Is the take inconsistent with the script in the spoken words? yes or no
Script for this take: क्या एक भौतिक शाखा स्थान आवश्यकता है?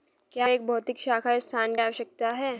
no